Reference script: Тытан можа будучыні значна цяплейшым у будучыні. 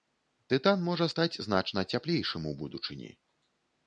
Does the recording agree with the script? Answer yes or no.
no